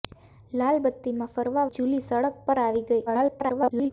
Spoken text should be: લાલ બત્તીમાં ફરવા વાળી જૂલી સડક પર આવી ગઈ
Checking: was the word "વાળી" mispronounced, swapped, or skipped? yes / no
yes